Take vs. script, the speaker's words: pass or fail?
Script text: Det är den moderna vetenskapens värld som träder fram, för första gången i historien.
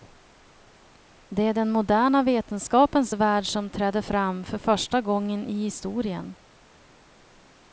pass